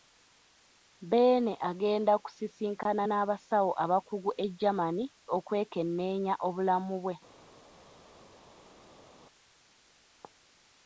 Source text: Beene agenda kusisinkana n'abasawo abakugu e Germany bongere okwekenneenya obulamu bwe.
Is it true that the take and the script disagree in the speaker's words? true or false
true